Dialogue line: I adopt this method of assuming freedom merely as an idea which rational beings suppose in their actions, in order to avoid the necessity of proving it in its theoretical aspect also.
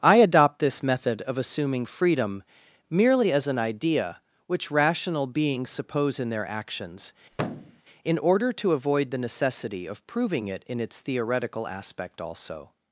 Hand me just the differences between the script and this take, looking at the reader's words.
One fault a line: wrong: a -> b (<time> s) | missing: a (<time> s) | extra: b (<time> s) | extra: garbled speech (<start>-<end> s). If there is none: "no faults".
no faults